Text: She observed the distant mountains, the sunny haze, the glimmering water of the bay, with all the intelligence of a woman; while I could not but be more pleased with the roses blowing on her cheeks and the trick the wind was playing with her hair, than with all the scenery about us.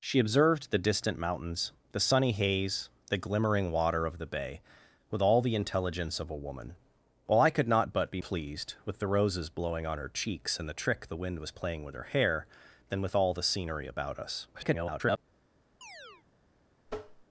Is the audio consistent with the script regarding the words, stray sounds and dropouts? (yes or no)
no